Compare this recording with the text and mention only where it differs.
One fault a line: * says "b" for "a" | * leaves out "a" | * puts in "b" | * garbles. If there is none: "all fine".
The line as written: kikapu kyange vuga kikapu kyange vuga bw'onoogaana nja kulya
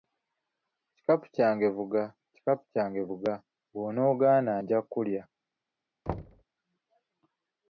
all fine